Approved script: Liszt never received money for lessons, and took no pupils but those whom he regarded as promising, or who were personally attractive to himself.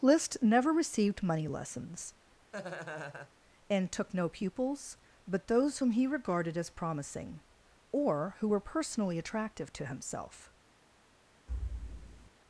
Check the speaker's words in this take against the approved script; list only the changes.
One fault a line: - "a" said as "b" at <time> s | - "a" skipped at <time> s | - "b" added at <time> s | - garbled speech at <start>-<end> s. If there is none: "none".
- "for" skipped at 1.5 s